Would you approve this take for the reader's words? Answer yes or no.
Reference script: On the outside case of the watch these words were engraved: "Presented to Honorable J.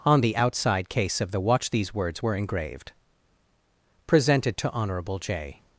yes